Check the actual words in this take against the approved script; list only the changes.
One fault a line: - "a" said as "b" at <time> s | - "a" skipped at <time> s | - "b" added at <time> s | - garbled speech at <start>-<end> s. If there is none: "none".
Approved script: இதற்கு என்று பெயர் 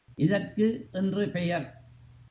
none